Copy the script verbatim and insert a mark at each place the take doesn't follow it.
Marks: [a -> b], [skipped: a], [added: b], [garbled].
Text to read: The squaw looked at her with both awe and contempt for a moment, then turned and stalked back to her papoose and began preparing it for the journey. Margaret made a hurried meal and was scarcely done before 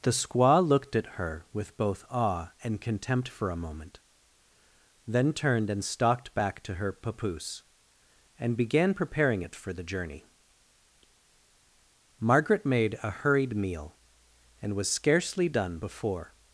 The squaw looked at her with both awe and contempt for a moment, then turned and stalked back to her papoose and began preparing it for the journey. Margaret made a hurried meal and was scarcely done before